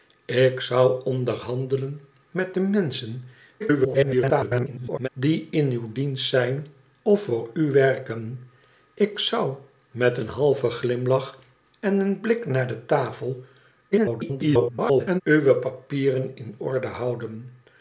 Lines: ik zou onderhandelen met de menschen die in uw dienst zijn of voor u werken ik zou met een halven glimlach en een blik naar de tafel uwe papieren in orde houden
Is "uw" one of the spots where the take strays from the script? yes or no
no